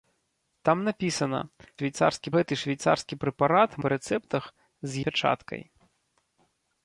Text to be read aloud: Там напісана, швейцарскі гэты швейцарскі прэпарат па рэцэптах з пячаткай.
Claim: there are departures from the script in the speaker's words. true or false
false